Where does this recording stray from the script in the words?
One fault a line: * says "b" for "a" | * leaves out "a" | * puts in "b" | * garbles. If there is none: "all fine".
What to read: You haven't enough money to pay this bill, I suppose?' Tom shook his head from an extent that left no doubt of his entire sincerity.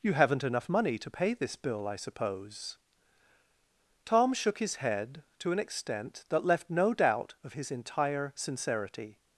* says "to" for "from"